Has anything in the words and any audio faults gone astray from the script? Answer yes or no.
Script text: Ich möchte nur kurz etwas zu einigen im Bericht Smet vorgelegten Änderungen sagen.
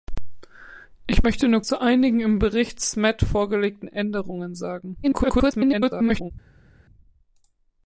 yes